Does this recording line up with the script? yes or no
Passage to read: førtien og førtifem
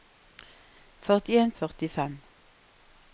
yes